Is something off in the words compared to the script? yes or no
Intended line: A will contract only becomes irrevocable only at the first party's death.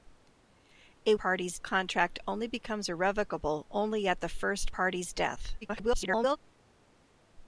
yes